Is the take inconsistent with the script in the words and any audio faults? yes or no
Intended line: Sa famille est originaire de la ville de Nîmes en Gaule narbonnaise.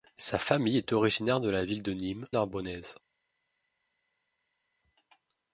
yes